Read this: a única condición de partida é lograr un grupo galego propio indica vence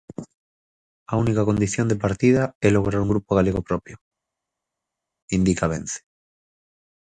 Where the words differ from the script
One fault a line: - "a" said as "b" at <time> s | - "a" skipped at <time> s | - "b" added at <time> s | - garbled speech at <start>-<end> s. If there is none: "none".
none